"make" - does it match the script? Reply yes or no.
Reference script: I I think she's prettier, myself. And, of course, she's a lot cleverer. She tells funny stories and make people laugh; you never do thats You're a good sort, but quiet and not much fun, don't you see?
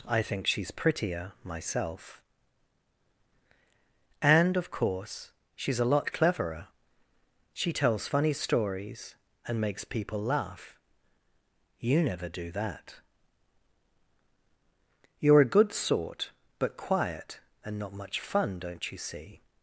no